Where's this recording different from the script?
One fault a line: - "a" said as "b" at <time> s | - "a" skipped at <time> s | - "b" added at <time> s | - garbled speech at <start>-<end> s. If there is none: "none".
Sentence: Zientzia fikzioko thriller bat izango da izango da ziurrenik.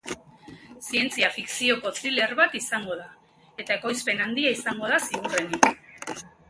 - "eta ekoizpen handia" added at 3.7 s